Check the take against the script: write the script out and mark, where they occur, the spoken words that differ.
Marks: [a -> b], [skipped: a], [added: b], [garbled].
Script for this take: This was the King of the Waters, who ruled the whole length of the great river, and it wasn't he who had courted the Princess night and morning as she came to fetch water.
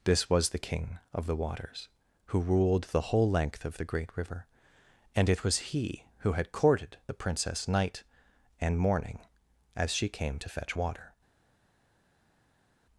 This was the King of the Waters, who ruled the whole length of the great river, and it [wasn't -> was] he who had courted the Princess night and morning as she came to fetch water.